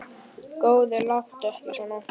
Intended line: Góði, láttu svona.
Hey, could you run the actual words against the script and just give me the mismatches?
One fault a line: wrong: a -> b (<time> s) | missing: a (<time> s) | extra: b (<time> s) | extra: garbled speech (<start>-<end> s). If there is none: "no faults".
extra: ekki (1.5 s)